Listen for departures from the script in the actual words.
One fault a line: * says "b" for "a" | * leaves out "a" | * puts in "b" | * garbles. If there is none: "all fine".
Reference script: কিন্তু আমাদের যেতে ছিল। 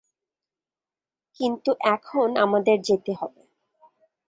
* puts in "এখন"
* says "হবে" for "ছিল"